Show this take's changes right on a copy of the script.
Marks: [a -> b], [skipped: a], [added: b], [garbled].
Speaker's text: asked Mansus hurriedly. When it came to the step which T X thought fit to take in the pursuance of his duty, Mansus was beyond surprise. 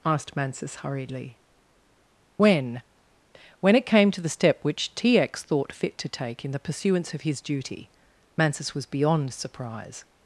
asked Mansus hurriedly. When [added: When] it came to the step which T X thought fit to take in the pursuance of his duty, Mansus was beyond surprise.